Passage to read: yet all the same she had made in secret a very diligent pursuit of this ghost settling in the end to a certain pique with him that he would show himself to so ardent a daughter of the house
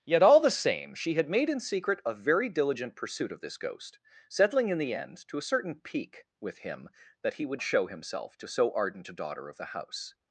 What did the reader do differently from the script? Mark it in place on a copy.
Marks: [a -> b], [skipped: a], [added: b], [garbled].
yet all the same she had made in secret a very diligent pursuit of this ghost settling in the end to a certain pique with him that he would show himself to so ardent a daughter of the house